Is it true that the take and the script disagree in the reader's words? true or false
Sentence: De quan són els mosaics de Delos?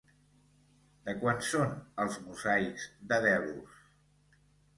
false